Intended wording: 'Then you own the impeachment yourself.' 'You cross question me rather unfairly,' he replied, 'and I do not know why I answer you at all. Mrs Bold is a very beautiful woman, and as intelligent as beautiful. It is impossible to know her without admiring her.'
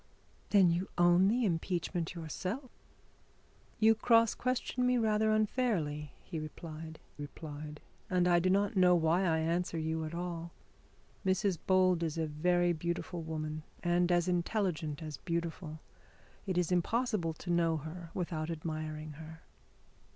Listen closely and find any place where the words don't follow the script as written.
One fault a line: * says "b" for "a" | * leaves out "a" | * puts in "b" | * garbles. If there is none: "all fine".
* puts in "replied"